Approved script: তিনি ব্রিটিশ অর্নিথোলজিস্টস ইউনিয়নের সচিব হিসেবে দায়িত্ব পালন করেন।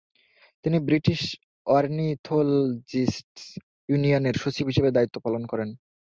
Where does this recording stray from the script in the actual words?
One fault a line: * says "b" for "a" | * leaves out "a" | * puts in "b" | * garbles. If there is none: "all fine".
all fine